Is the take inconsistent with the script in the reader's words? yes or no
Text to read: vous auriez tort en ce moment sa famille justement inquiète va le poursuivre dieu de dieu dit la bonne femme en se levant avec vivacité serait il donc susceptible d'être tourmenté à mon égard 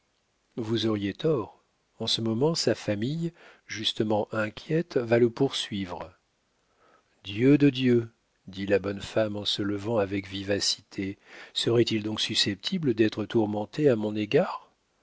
no